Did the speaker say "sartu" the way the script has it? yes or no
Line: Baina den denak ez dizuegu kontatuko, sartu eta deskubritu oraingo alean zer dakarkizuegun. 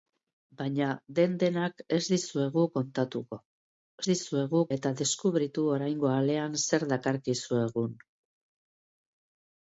no